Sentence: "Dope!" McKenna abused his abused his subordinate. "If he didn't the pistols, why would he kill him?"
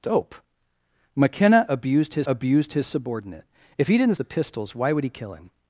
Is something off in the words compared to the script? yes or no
no